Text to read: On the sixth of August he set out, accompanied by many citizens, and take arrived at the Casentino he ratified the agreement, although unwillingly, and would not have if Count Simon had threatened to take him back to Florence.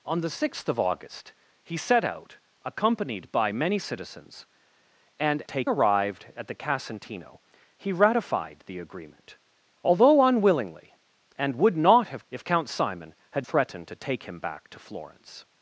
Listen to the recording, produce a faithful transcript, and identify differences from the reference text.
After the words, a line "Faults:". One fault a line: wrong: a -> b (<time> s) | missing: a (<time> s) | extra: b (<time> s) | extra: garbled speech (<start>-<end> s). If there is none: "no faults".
On the sixth of August he set out, accompanied by many citizens, and take arrived at the Casentino he ratified the agreement, although unwillingly, and would not have if Count Simon had threatened to take him back to Florence.
Faults:
no faults